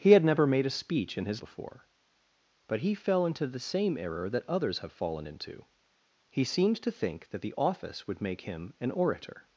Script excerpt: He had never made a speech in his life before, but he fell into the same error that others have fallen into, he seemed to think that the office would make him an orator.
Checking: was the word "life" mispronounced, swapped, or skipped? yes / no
yes